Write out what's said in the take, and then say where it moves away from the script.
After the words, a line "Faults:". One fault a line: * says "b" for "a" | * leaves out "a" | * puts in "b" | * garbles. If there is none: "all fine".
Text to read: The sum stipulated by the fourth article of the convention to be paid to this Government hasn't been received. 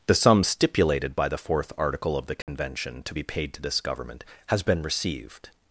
The sum stipulated by the fourth article of the convention to be paid to this Government has been received.
Faults:
* says "has" for "hasn't"